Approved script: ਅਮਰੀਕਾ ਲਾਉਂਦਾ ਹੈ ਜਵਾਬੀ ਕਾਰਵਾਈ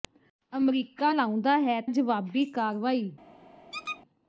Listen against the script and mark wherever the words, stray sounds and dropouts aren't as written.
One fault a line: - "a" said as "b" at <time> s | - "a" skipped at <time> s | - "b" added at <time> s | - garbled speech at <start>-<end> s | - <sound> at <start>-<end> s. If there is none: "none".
- squeak at 3.7-4.0 s